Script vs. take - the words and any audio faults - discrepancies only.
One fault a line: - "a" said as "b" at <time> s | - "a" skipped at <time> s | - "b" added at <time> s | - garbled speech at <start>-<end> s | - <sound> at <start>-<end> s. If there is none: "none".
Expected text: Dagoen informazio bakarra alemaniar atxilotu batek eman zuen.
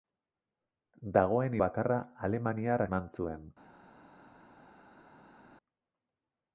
- "informazio" skipped at 1.6 s
- "atxilotu batek" skipped at 2.8 s